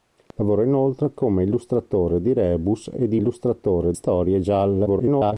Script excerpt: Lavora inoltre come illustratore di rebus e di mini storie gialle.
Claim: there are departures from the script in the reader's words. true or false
true